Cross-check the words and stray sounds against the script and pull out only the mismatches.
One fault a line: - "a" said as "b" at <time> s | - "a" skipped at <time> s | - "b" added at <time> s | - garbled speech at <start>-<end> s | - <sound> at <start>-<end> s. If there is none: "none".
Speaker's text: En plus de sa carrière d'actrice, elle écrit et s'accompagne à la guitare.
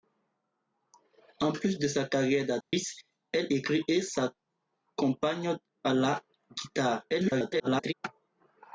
- dropout at 2.6-2.7 s
- garbled speech at 7.1-7.9 s